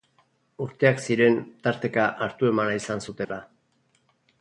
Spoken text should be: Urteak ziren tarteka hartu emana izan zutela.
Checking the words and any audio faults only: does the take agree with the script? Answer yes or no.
no